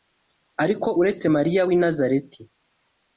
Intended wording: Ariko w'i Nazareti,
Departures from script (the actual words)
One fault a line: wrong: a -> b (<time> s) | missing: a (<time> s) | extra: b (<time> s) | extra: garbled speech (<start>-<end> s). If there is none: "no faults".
extra: uretse Mariya (1.0 s)